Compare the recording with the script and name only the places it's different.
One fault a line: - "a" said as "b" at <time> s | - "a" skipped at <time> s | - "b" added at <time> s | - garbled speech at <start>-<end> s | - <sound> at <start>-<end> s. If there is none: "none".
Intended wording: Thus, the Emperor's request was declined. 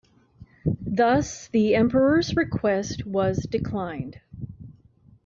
none